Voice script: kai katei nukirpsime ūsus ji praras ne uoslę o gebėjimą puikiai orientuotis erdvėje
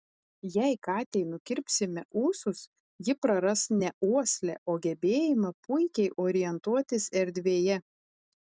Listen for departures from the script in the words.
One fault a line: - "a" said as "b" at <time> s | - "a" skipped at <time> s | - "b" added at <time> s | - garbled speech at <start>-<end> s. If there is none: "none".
- "kai" said as "jei" at 0.5 s